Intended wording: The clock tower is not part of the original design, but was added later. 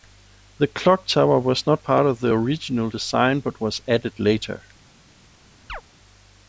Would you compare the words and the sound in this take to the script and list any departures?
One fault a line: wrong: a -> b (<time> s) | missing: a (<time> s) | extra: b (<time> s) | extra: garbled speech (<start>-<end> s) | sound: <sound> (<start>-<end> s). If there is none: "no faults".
wrong: is -> was (1.4 s)
sound: chirp (5.7-5.8 s)